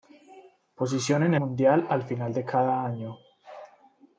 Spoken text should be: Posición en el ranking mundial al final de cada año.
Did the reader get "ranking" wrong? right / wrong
wrong